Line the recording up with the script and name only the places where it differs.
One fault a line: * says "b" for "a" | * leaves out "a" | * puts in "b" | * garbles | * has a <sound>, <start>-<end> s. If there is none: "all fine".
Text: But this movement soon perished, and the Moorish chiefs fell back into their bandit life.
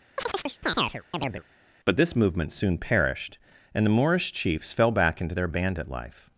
* has a chirp, 0.2-1.4 s